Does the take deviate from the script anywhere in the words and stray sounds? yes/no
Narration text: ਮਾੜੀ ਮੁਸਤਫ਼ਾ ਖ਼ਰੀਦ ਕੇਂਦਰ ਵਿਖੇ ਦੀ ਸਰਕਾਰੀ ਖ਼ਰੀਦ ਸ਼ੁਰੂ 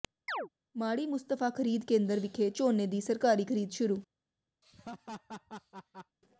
yes